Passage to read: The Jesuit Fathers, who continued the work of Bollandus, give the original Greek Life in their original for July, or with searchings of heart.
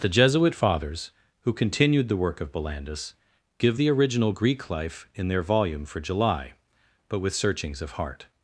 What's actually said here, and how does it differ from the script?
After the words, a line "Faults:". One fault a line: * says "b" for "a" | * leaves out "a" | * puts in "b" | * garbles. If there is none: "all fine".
The Jesuit Fathers, who continued the work of Bollandus, give the original Greek Life in their volume for July, but with searchings of heart.
Faults:
* says "volume" for "original"
* says "but" for "or"